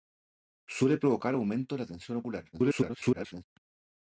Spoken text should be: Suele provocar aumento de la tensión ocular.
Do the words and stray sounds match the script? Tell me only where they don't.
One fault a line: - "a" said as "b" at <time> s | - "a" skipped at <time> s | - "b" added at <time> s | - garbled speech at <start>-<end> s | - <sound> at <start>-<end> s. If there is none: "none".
- garbled speech at 2.5-3.4 s